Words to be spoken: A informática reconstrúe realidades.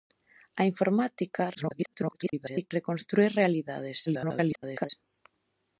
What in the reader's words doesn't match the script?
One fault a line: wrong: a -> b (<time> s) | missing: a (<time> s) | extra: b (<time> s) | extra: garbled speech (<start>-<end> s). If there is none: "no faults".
extra: garbled speech (1.5-2.7 s)
extra: garbled speech (4.1-4.9 s)